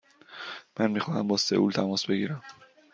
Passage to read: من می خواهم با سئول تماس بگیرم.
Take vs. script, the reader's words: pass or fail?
pass